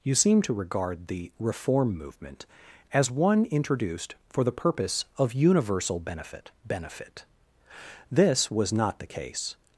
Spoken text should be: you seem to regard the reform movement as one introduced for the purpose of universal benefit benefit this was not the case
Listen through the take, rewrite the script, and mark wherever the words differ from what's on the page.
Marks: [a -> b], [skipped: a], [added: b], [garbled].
you seem to regard the reform movement as one introduced for the purpose of universal benefit benefit this was not the case